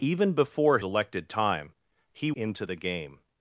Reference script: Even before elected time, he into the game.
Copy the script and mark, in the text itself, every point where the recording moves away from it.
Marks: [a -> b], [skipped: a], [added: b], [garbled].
Even before elected time, he into the game.